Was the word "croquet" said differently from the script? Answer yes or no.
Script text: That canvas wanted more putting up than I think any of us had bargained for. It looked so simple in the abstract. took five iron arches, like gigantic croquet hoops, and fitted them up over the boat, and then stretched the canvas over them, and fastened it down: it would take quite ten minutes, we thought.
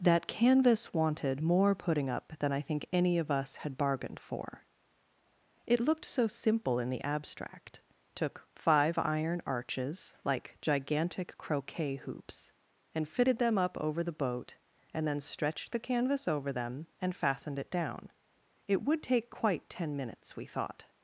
no